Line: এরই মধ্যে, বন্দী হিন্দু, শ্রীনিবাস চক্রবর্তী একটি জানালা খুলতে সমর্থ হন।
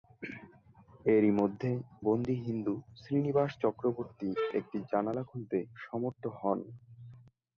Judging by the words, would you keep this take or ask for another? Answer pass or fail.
pass